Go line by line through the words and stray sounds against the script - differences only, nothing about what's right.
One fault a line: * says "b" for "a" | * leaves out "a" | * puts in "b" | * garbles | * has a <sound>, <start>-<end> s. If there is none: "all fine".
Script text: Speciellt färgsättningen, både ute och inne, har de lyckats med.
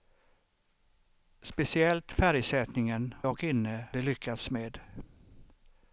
* leaves out "både ute"
* leaves out "har"